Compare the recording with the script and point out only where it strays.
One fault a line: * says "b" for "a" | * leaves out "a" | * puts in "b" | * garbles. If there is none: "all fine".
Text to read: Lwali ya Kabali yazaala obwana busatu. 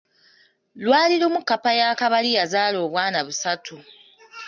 * puts in "lumu kkapa"